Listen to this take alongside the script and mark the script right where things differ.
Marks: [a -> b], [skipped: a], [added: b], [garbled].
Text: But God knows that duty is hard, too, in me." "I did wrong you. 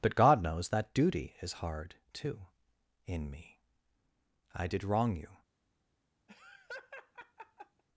But God knows that duty is hard, too, in me." "I did wrong you.